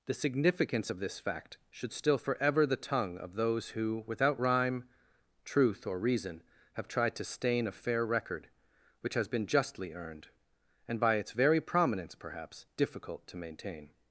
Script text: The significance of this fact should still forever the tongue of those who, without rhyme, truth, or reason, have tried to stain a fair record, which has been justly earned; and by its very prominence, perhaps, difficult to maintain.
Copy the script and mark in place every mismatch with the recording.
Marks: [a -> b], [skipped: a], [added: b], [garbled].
The significance of this fact should still forever the tongue of those who, without rhyme, truth, or reason, have tried to stain a fair record, which has been justly earned; and by its very prominence, perhaps, difficult to maintain.